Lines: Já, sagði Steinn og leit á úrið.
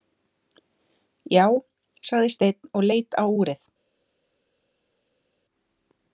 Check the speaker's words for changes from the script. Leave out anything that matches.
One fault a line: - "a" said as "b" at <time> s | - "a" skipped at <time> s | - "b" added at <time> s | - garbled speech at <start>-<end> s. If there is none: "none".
none